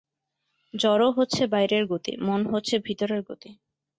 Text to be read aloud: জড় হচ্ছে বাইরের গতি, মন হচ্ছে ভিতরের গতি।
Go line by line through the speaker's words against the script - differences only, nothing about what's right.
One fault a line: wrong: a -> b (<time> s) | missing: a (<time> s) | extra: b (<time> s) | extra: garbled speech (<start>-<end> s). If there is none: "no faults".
no faults